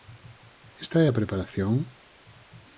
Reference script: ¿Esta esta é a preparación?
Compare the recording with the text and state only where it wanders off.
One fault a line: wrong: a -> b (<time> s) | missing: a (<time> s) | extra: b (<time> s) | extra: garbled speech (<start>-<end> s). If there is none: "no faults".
missing: esta (1.0 s)